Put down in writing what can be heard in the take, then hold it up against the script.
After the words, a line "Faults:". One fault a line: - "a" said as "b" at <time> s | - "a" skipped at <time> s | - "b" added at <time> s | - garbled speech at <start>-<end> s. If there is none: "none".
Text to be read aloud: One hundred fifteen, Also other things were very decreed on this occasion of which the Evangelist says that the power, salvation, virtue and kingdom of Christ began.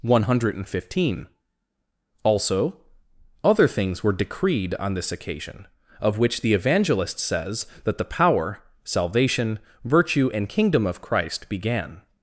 One hundred fifteen, Also other things were decreed on this occasion of which the Evangelist says that the power, salvation, virtue and kingdom of Christ began.
Faults:
- "very" skipped at 4.1 s